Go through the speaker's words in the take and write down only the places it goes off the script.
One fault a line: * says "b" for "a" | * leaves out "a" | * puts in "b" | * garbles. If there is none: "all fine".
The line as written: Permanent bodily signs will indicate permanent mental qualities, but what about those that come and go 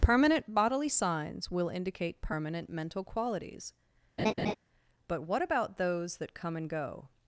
all fine